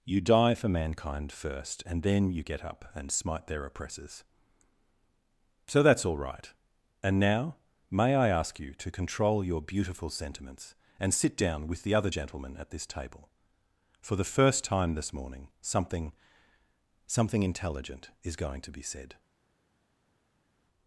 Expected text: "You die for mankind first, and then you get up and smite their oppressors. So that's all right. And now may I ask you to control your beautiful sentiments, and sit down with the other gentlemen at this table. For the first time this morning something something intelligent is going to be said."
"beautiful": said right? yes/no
yes